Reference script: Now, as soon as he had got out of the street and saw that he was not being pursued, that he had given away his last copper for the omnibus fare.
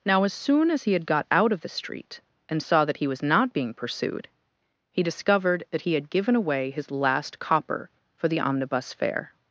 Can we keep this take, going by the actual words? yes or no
no